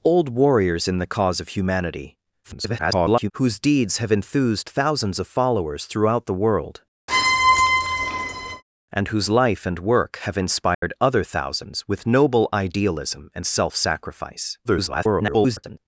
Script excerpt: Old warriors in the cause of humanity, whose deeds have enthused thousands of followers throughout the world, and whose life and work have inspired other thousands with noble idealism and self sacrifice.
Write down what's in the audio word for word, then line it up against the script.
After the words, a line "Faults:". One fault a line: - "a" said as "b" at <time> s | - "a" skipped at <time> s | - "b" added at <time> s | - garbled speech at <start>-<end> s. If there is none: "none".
Old warriors in the cause of humanity, [garbled] whose deeds have enthused thousands of followers throughout the world, and whose life and work have inspired other thousands with noble idealism and self sacrifice. [garbled]
Faults:
- garbled speech at 2.4-3.3 s
- garbled speech at 14.6-15.8 s